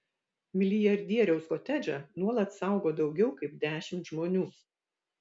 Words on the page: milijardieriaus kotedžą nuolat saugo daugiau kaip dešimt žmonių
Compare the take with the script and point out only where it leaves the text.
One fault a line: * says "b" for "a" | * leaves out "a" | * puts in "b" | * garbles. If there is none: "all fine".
all fine